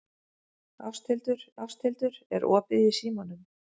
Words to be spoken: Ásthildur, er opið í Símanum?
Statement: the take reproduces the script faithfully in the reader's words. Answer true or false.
false